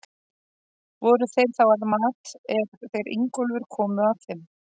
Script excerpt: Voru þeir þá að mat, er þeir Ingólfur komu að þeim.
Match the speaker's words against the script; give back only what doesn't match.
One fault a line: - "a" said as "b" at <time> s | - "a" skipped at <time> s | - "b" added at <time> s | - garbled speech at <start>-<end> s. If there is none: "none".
none